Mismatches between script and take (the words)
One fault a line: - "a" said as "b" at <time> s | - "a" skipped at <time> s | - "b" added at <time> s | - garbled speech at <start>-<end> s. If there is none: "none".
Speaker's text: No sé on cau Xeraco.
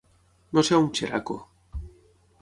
- "cau" skipped at 0.9 s